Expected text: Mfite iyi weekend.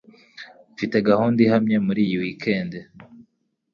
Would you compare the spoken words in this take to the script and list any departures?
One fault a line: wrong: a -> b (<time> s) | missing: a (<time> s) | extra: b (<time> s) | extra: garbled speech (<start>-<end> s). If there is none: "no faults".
extra: gahunda ihamye muri (1.1 s)